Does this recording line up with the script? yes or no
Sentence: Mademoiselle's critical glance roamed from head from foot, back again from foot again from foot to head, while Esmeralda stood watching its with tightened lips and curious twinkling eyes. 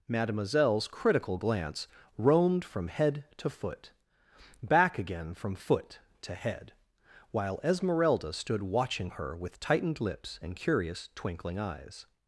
no